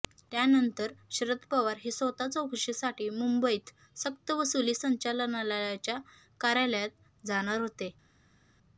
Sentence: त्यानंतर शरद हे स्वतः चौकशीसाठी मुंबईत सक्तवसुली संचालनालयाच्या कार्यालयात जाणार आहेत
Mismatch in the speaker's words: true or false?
true